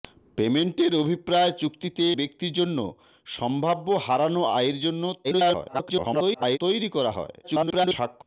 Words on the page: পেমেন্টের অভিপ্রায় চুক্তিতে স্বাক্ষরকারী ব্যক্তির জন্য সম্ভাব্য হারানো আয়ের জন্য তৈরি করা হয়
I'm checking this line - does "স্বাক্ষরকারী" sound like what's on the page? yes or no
no